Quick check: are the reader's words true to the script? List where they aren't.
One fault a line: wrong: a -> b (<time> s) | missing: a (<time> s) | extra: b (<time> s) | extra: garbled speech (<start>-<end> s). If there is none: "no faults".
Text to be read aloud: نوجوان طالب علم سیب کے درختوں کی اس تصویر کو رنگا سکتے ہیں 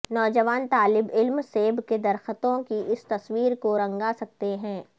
no faults